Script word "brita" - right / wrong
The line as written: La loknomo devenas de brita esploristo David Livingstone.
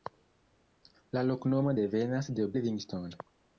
wrong